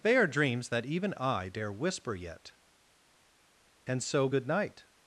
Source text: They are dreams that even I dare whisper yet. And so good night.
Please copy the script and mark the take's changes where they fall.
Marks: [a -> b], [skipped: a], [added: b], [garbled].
They are dreams that even I dare whisper yet. And so good night.